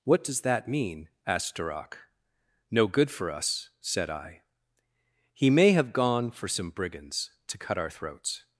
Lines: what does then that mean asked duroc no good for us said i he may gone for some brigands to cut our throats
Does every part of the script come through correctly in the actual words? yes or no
no